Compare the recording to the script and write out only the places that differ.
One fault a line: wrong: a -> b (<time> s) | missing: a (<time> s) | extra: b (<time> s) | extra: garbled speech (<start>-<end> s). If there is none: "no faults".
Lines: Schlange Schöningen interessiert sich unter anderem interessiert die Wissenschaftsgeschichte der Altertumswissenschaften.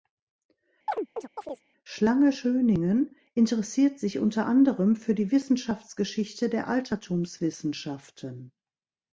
wrong: interessiert -> für (4.9 s)